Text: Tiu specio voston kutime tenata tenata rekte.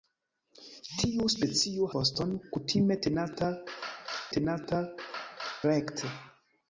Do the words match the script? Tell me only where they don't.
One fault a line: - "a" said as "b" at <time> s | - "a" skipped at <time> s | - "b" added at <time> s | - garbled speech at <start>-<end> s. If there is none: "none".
none